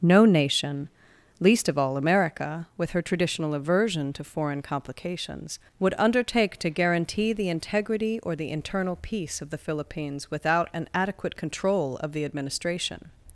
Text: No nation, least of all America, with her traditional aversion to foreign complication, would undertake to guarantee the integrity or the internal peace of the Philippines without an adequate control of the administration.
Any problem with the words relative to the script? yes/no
yes